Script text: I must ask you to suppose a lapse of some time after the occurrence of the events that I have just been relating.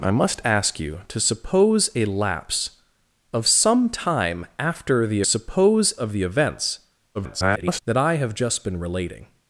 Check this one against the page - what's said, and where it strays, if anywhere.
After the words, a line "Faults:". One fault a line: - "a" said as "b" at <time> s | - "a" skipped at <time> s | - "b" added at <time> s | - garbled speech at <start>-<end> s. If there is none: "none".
I must ask you to suppose a lapse of some time after the suppose of the events [garbled] that I have just been relating.
Faults:
- "occurrence" said as "suppose" at 5.2 s
- garbled speech at 7.1-7.8 s